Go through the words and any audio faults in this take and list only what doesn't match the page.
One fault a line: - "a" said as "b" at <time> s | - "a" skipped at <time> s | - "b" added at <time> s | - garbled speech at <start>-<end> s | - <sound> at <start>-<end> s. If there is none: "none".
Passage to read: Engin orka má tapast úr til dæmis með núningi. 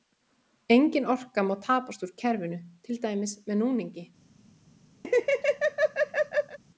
- "kerfinu" added at 2.2 s
- laugh at 5.0-6.6 s